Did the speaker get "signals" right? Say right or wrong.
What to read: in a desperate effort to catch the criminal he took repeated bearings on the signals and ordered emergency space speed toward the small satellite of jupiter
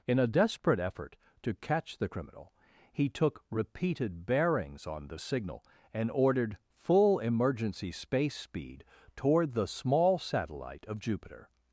wrong